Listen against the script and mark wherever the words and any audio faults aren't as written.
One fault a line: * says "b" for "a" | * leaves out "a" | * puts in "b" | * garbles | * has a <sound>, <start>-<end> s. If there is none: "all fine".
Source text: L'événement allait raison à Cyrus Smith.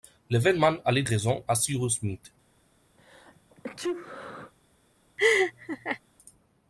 * has a sneeze, 3.0-4.5 s
* has a laugh, 5.2-6.0 s